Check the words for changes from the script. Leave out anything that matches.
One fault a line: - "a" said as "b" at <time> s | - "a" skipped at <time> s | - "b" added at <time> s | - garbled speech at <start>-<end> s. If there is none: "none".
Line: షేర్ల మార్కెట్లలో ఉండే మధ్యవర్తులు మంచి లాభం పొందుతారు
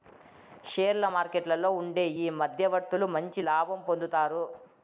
- "ఈ" added at 2.2 s